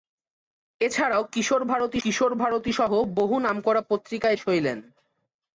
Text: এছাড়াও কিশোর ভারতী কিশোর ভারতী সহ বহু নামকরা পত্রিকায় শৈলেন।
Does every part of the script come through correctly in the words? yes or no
yes